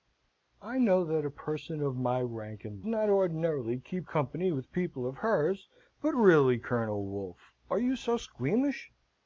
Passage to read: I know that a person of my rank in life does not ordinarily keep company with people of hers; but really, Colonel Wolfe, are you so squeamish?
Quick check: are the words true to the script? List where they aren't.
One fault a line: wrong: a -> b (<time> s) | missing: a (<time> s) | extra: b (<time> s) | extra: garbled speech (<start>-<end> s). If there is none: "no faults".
missing: life does (2.8 s)